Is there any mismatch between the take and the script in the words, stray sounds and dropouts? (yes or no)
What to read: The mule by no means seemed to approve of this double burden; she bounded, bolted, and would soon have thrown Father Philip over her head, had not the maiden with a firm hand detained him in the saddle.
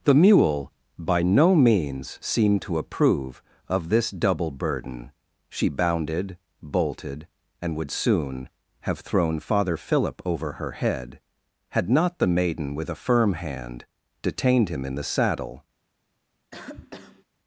yes